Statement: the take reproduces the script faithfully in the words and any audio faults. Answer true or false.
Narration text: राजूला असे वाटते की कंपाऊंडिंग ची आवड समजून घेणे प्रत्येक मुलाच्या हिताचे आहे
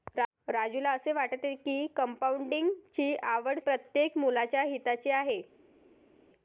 false